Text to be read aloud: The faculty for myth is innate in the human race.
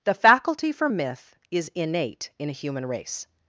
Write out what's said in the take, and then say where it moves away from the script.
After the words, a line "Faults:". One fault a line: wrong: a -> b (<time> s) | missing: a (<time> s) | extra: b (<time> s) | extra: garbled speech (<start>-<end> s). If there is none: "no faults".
The faculty for myth is innate in a human race.
Faults:
wrong: the -> a (2.5 s)